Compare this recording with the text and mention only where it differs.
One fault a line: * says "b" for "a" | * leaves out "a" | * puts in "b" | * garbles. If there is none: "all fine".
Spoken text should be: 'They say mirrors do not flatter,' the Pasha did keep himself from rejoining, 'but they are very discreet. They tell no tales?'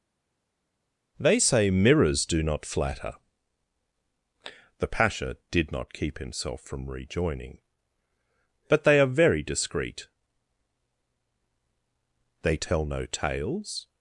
* puts in "not"